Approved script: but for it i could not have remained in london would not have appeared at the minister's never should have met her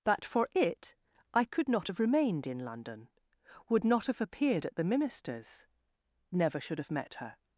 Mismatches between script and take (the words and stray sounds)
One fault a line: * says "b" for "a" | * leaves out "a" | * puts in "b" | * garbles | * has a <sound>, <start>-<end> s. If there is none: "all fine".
all fine